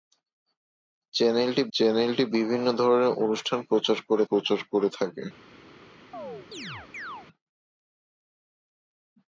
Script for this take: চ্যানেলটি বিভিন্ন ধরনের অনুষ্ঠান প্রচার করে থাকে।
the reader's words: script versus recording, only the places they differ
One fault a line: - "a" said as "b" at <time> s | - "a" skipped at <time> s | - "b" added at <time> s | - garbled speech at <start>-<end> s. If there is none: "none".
- "চ্যানেলটি" added at 1.7 s
- "প্রচার করে" added at 4.3 s